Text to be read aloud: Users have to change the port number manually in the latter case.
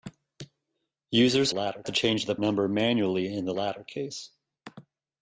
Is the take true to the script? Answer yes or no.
no